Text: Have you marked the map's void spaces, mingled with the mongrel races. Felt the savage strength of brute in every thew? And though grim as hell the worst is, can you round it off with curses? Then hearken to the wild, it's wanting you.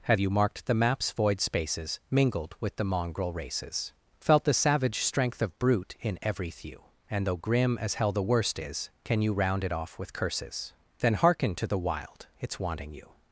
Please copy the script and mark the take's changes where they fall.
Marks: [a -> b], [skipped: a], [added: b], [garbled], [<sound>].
Have you marked the map's void spaces, mingled with the mongrel races. Felt the savage strength of brute in every thew? And though grim as hell the worst is, can you round it off with curses? Then hearken to the wild, it's wanting you.